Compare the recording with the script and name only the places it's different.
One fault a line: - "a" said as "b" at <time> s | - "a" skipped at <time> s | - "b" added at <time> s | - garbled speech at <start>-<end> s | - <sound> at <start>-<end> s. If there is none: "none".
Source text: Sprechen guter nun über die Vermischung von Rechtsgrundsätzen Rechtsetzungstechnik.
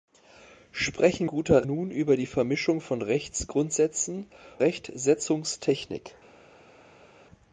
none